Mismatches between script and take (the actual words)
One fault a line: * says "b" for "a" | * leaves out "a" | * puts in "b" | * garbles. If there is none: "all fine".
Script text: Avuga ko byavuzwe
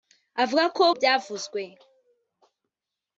all fine